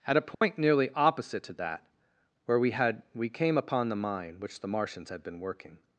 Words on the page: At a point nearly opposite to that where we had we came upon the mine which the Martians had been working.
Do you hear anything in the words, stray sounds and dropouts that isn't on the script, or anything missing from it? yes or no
yes